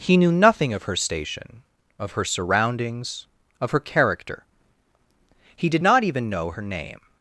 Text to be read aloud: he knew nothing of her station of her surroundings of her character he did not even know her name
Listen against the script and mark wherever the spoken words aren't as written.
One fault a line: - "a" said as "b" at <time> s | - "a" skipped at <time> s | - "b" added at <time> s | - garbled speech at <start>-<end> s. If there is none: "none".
none